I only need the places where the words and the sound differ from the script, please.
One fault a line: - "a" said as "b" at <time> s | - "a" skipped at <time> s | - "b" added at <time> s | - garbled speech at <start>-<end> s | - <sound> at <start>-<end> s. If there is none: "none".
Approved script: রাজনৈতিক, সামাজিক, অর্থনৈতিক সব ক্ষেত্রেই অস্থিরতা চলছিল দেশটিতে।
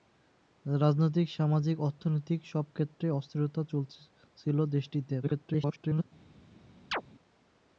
- garbled speech at 5.2-6.0 s
- chirp at 6.9-7.0 s